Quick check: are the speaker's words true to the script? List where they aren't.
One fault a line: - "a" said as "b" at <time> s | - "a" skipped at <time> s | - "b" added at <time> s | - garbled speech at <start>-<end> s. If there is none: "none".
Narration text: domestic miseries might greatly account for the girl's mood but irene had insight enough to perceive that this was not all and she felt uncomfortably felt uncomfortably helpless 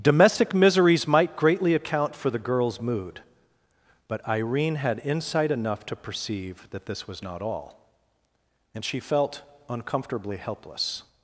- "felt uncomfortably" skipped at 10.4 s